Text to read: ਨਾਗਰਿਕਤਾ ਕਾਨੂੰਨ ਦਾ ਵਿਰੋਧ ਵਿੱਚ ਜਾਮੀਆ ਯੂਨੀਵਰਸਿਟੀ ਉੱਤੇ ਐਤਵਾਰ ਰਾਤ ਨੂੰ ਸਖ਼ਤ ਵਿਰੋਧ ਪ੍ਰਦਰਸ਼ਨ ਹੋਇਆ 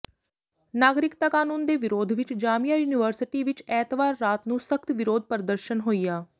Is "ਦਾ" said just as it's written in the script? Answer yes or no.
no